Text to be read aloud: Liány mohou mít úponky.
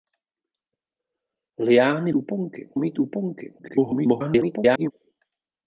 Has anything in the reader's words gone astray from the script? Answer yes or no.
yes